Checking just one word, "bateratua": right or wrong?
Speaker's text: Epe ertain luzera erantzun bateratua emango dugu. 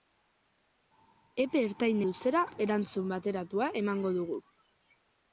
right